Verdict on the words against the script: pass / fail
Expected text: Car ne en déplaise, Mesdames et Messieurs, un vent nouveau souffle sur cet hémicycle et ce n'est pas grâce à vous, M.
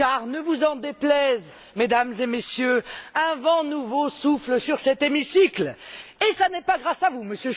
fail